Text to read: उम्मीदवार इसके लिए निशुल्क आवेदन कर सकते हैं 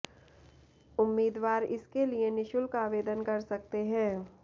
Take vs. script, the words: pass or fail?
pass